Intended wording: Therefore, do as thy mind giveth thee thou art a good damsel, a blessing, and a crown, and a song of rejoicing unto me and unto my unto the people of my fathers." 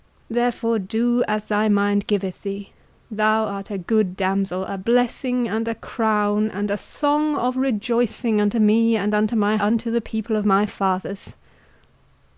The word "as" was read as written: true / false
true